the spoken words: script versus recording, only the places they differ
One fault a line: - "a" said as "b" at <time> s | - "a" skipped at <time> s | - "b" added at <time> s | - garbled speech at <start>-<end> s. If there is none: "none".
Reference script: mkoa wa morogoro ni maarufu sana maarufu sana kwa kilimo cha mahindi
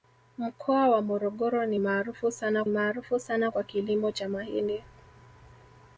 none